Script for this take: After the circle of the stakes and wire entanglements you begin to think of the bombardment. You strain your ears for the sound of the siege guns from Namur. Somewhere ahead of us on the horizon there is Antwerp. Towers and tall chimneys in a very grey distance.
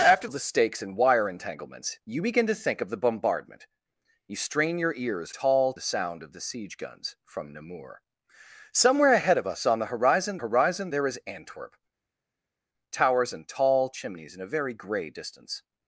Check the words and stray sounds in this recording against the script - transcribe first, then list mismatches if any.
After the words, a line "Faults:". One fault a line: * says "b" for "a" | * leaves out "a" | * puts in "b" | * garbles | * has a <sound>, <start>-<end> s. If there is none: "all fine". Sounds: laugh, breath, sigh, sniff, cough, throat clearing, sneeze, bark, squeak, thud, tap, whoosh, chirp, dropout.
After of the stakes and wire entanglements you begin to think of the bombardment. You strain your ears tall the sound of the siege guns from Namur. Somewhere ahead of us on the horizon horizon there is Antwerp. Towers and tall chimneys in a very grey distance.
Faults:
* leaves out "the circle"
* says "tall" for "for"
* puts in "horizon"